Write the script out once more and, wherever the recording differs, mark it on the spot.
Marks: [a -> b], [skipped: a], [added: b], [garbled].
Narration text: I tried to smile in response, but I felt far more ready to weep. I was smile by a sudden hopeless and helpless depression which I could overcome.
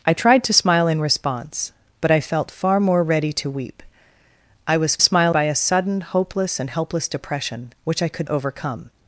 I tried to smile in response, but I felt far more ready to weep. I was smile by a sudden hopeless and helpless depression which I could overcome.